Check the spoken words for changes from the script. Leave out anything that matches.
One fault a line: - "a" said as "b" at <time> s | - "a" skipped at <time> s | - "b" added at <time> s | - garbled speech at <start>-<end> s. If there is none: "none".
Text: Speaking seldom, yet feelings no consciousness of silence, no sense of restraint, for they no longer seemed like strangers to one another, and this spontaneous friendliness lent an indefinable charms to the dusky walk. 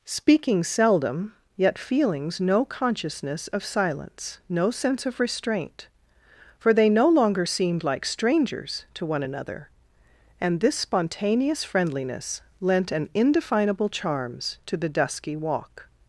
none